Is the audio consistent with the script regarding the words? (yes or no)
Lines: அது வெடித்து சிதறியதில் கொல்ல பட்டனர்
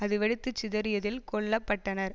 yes